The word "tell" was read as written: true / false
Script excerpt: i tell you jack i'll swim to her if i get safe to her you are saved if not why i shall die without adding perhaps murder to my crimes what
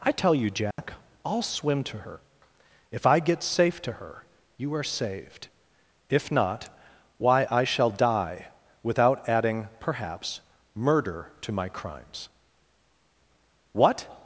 true